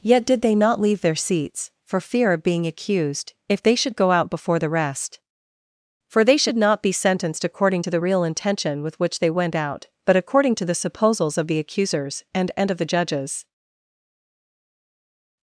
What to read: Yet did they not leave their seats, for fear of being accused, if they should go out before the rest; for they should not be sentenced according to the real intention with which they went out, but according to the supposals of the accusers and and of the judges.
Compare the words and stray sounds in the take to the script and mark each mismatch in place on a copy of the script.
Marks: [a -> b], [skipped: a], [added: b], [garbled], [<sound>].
Yet did they not leave their seats, for fear of being accused, if they should go out before the rest; for they should not be sentenced according to the real intention with which they went out, but according to the supposals of the accusers and and of the judges.